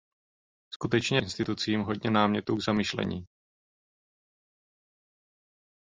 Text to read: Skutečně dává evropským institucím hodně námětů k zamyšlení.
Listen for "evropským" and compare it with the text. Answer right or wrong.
wrong